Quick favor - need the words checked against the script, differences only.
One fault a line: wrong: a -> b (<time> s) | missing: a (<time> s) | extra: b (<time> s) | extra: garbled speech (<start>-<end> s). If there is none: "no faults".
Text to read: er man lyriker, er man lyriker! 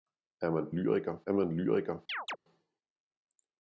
no faults